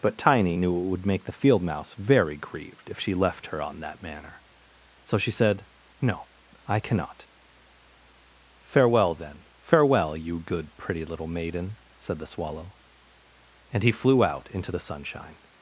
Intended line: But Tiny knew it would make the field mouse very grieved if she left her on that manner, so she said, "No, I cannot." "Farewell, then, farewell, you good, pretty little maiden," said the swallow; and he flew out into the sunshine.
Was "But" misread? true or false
false